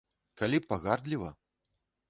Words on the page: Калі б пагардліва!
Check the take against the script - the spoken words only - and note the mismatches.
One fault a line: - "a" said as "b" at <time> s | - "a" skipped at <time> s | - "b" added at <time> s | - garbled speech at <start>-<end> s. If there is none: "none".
none